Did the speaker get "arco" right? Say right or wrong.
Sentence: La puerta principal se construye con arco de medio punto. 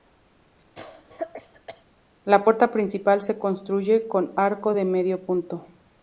right